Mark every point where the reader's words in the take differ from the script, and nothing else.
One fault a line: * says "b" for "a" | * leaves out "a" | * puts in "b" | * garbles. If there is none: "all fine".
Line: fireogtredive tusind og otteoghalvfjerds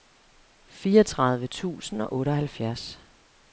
all fine